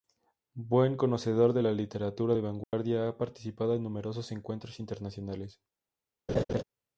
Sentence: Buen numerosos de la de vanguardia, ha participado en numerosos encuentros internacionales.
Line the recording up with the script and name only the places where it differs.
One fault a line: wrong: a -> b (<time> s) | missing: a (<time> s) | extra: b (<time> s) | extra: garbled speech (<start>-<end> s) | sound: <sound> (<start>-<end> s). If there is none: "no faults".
wrong: numerosos -> conocedor (1.0 s)
extra: literatura (1.7 s)
sound: dropout (2.6-2.7 s)
sound: laugh (6.3-6.6 s)